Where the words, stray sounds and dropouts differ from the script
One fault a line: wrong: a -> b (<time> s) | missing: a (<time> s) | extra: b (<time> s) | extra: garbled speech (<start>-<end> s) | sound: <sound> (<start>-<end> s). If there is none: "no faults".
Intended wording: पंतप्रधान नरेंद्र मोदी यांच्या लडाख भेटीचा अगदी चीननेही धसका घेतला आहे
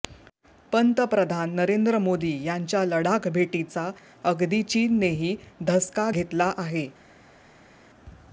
no faults